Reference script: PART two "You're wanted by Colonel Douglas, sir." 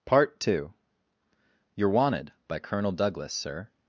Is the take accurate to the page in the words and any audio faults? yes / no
yes